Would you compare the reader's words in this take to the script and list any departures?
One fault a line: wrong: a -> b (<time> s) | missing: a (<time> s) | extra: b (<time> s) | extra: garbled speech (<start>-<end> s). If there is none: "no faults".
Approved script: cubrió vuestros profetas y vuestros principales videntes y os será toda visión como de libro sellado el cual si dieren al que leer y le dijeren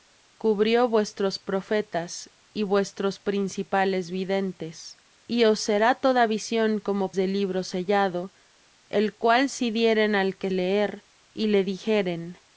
no faults